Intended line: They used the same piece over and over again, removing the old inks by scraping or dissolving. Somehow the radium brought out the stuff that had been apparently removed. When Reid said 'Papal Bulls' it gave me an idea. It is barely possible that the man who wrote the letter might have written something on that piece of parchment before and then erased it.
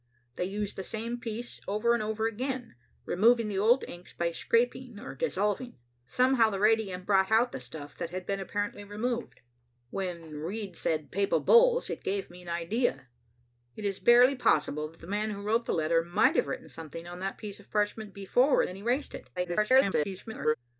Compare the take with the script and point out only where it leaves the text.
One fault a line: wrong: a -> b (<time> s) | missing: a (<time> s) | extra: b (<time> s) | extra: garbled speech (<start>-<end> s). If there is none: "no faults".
missing: and (18.6 s)
extra: garbled speech (19.4-20.5 s)